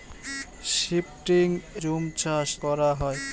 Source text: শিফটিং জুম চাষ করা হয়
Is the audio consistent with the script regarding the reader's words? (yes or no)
yes